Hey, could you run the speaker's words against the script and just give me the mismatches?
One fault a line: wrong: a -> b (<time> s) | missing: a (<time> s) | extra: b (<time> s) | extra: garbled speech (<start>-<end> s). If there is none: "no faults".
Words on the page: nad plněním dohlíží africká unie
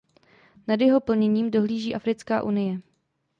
extra: jeho (0.8 s)